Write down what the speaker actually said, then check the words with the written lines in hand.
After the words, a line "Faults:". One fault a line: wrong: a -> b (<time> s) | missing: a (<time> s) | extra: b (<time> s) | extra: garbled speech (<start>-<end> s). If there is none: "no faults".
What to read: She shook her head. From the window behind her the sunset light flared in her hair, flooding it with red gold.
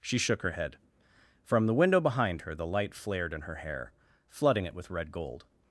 She shook her head. From the window behind her the light flared in her hair, flooding it with red gold.
Faults:
missing: sunset (2.6 s)